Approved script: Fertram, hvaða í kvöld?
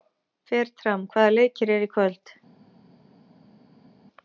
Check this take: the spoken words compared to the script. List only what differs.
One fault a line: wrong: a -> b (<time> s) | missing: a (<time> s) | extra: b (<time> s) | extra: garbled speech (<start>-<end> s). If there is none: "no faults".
extra: leikir eru (1.3 s)